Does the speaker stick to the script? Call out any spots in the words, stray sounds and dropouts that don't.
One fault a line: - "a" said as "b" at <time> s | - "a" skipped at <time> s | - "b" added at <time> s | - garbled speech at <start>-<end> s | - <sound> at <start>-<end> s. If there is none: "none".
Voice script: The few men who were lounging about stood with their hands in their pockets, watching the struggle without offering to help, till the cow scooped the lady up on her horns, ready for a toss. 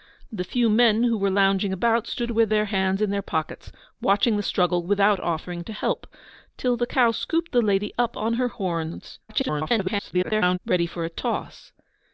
- garbled speech at 9.3-10.6 s